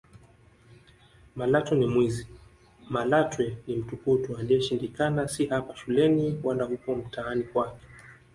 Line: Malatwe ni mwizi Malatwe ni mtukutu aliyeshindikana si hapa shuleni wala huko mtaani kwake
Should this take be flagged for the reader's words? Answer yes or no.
no